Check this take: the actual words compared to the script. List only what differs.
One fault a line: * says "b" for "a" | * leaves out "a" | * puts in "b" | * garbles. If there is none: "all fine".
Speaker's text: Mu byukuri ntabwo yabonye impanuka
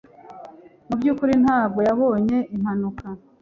all fine